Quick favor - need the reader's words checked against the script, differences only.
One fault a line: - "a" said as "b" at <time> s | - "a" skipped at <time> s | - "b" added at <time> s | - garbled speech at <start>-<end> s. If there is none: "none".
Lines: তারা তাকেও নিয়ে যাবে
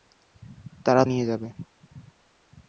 - "তাকেও" skipped at 1.0 s